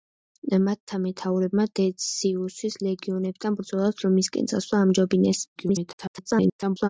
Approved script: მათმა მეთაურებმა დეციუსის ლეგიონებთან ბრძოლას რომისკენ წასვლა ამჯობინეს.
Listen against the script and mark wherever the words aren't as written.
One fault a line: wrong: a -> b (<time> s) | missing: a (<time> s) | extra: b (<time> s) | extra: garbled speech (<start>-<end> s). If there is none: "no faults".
extra: garbled speech (5.6-6.9 s)